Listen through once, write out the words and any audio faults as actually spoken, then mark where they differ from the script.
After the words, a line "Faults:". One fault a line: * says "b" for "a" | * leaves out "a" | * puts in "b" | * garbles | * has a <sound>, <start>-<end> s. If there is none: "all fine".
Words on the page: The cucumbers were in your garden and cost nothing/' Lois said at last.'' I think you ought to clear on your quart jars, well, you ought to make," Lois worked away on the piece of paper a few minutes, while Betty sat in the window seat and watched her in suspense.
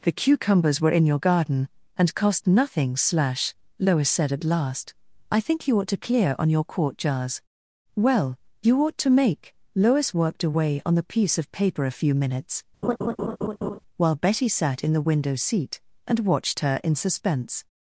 The cucumbers were in your garden and cost nothing/' slash Lois said at last.'' I think you ought to clear on your quart jars, well, you ought to make," Lois worked away on the piece of paper a few minutes, while Betty sat in the window seat and watched her in suspense.
Faults:
* puts in "slash"
* has a laugh, 12.8-13.8 s